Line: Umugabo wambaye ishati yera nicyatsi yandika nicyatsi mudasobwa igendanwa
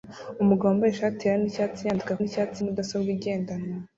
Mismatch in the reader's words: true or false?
false